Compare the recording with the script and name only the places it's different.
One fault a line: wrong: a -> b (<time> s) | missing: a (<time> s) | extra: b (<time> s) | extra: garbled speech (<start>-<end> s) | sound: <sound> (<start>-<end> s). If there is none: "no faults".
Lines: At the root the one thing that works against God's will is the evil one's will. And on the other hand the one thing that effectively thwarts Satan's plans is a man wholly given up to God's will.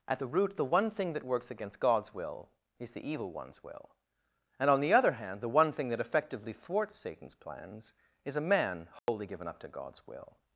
sound: dropout (9.0-9.1 s)